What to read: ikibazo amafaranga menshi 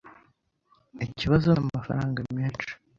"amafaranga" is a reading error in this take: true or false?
false